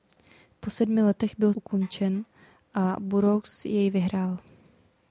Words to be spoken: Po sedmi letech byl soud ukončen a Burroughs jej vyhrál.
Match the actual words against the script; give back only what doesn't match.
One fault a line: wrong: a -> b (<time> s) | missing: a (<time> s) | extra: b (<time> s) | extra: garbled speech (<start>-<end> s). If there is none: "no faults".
missing: soud (1.5 s)